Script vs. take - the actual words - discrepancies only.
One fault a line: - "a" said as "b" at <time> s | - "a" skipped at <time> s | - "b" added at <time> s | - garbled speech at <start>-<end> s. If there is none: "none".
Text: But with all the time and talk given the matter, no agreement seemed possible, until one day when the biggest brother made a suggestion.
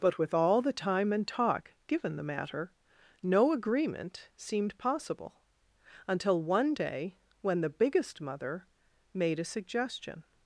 - "brother" said as "mother" at 8.2 s